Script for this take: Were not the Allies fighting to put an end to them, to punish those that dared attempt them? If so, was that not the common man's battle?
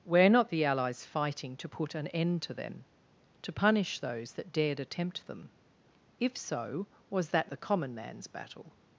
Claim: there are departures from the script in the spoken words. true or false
true